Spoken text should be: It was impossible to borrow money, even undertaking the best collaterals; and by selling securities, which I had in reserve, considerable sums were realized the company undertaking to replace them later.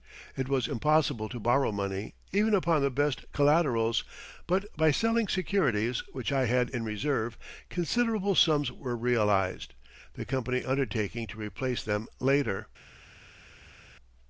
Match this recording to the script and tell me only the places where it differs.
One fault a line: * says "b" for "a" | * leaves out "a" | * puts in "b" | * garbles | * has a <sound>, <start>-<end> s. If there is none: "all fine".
* says "upon" for "undertaking"
* says "but" for "and"